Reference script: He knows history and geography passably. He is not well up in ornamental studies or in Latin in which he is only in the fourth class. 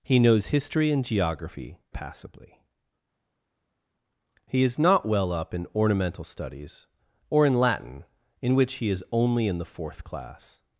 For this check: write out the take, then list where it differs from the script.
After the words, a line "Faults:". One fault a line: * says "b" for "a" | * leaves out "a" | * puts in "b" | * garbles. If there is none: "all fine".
He knows history and geography passably. He is not well up in ornamental studies or in Latin in which he is only in the fourth class.
Faults:
all fine